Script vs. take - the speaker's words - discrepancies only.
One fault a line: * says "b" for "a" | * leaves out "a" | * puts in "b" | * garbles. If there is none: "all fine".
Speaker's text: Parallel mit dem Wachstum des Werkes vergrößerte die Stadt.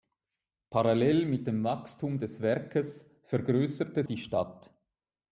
all fine